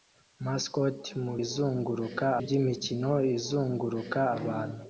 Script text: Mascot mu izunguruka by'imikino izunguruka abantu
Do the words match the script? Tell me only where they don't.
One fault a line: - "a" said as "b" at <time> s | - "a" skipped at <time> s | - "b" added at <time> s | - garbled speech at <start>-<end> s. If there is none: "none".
none